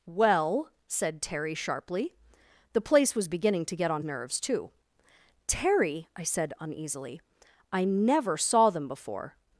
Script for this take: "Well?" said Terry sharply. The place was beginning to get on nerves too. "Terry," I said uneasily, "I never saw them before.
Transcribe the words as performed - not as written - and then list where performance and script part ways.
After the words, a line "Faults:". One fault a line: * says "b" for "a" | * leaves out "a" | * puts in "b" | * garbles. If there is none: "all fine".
"Well?" said Terry sharply. The place was beginning to get on nerves too. "Terry," I said uneasily, "I never saw them before.
Faults:
all fine